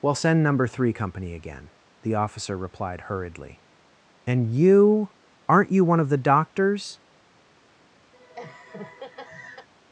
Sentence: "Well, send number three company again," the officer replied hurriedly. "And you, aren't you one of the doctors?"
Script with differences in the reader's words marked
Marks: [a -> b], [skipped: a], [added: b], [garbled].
"Well, send number three company again," the officer replied hurriedly. "And you, aren't you one of the doctors?"